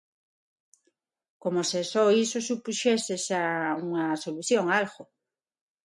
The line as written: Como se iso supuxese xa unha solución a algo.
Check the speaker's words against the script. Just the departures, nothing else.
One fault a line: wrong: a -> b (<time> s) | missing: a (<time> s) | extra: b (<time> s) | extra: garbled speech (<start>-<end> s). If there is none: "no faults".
extra: só (1.9 s)